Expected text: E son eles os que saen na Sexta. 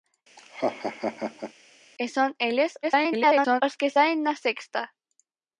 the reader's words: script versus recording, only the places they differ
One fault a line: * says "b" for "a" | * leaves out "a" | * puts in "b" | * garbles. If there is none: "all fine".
* garbles